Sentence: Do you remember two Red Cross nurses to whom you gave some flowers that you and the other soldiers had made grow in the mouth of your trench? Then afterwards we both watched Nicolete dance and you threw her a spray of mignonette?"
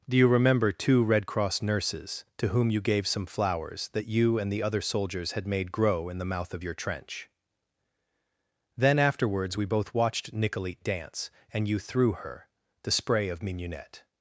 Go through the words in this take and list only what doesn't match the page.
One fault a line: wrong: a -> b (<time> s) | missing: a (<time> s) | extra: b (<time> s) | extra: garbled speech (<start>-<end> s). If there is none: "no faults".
wrong: a -> the (12.8 s)